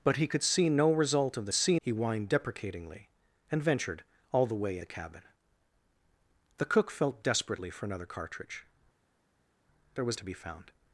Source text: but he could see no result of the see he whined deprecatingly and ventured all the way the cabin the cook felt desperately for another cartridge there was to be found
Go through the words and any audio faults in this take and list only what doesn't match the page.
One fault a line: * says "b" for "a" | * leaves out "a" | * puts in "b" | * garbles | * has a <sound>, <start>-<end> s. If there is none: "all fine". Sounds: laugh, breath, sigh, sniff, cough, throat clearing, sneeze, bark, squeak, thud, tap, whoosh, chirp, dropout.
all fine